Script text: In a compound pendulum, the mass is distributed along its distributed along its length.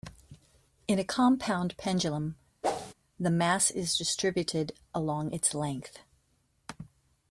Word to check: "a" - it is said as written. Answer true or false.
true